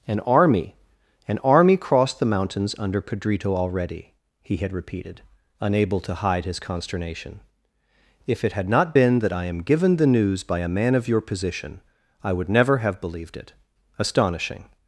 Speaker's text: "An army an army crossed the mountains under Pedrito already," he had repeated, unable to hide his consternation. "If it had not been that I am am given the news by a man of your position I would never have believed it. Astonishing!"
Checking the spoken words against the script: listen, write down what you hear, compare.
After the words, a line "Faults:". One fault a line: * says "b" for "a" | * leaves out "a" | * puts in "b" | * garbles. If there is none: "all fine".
"An army an army crossed the mountains under Pedrito already," he had repeated, unable to hide his consternation. "If it had not been that I am given the news by a man of your position I would never have believed it. Astonishing!"
Faults:
* leaves out "am"